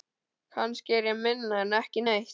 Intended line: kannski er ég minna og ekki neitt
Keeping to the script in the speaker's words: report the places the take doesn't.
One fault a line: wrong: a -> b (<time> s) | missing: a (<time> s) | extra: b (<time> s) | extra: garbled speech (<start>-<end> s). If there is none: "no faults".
wrong: og -> en (1.6 s)